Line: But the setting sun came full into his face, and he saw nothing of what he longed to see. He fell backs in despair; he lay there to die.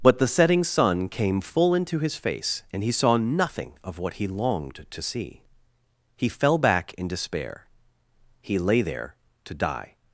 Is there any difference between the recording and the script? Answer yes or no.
yes